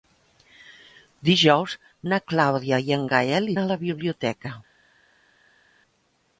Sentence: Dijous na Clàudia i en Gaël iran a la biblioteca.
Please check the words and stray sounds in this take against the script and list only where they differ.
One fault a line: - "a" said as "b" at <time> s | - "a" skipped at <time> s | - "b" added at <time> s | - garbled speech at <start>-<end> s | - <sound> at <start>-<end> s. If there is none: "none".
- "iran" skipped at 3.5 s